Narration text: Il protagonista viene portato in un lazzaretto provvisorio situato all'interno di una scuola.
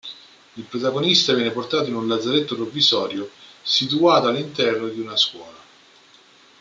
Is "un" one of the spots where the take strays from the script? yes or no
no